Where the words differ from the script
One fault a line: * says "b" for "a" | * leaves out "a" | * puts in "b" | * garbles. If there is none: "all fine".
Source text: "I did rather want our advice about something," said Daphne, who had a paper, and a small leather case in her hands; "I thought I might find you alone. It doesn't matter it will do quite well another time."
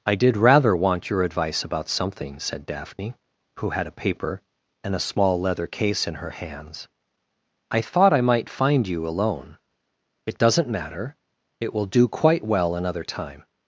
* says "your" for "our"